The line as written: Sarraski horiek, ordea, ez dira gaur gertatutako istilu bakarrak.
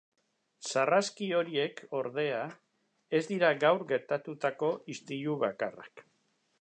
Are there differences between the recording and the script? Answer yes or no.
no